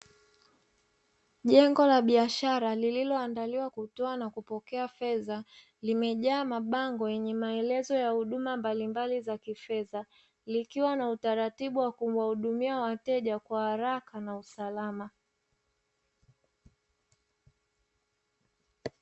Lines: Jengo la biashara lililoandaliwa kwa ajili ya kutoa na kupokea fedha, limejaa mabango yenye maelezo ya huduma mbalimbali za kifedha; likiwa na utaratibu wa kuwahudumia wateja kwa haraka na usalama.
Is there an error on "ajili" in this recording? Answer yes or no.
yes